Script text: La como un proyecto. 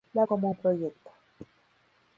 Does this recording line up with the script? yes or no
yes